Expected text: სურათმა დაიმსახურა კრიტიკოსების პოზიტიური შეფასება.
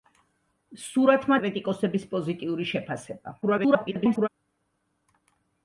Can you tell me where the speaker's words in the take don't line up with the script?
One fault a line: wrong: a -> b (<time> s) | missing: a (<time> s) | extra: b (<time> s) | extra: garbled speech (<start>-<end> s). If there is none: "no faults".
missing: დაიმსახურა (1.4 s)
extra: garbled speech (3.4-4.3 s)